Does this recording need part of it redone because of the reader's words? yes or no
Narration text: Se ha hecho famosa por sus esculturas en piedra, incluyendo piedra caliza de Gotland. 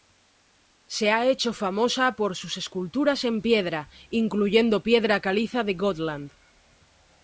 no